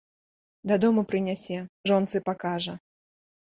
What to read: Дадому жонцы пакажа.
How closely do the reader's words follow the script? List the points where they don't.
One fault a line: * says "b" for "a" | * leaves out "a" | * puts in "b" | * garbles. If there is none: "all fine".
* puts in "прынясе"